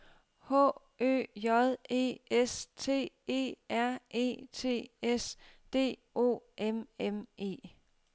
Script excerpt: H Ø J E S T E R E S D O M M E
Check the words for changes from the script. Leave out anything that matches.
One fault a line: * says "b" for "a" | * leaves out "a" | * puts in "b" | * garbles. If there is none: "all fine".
* puts in "T"